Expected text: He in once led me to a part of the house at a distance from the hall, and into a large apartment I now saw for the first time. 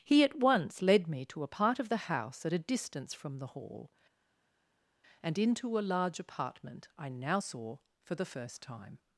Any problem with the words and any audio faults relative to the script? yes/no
yes